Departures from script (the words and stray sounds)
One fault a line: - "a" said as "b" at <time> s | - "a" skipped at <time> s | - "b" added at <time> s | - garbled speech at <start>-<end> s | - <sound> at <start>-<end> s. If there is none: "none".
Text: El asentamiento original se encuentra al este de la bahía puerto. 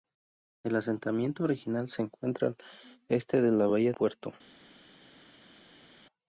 none